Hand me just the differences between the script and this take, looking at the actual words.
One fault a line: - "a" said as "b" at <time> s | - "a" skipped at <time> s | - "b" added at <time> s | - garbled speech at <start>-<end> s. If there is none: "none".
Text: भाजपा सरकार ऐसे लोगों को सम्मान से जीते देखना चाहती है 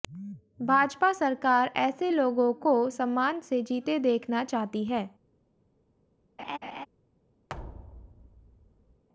none